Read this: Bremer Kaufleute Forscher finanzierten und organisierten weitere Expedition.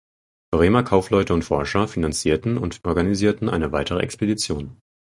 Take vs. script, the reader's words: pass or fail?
fail